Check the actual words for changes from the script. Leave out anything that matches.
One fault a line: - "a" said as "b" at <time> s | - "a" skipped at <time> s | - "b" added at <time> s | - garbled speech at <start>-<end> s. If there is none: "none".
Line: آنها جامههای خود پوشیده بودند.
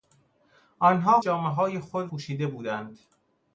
none